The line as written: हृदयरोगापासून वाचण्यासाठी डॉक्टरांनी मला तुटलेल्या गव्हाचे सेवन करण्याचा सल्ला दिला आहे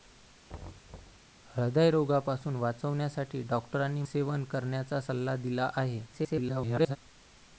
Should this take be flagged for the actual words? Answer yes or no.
yes